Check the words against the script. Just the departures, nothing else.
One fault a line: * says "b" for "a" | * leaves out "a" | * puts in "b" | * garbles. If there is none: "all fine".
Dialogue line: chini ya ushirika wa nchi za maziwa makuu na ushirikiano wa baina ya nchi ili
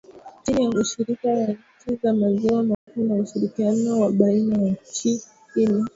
all fine